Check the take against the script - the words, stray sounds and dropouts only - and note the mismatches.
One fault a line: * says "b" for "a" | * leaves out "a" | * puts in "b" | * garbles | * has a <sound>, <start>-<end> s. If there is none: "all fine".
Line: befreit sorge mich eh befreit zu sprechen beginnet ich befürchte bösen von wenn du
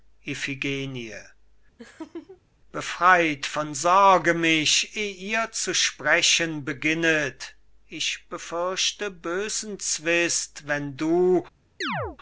* has a laugh, 1.8-2.4 s
* puts in "von"
* says "ihr" for "befreit"
* says "zwist" for "von"
* has a chirp, 11.8-12.2 s